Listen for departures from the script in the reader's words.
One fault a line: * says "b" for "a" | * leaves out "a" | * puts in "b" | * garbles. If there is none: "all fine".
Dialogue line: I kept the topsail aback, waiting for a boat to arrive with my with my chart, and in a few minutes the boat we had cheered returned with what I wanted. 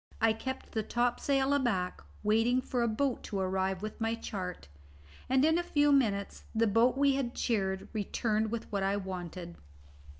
* leaves out "with my"